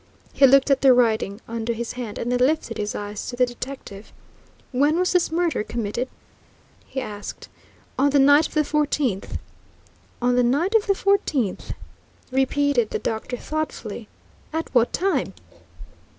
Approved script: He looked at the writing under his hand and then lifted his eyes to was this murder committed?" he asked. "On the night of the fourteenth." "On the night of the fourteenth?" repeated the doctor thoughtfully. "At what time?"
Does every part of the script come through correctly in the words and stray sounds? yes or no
no